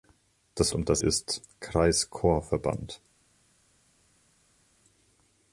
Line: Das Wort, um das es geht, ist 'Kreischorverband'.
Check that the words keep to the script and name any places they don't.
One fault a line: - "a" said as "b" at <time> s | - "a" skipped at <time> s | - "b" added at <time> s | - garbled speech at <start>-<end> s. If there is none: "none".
- "Wort" skipped at 0.7 s
- "es geht" skipped at 1.0 s